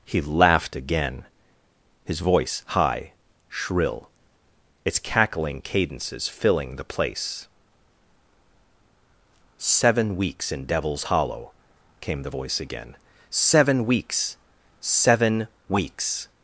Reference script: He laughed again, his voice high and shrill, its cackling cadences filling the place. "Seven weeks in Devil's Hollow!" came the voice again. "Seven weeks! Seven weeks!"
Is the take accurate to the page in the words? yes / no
no